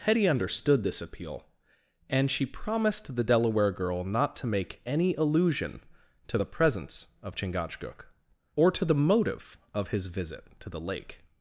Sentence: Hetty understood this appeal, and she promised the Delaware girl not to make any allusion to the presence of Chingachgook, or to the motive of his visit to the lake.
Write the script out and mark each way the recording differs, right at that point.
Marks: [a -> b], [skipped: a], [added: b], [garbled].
Hetty understood this appeal, and she promised the Delaware girl not to make any allusion to the presence of Chingachgook, or to the motive of his visit to the lake.